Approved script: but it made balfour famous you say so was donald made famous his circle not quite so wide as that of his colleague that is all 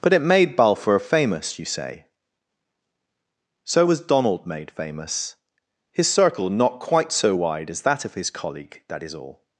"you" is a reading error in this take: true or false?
false